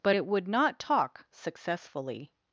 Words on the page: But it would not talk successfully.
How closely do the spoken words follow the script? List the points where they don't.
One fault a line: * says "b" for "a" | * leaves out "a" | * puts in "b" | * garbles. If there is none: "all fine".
all fine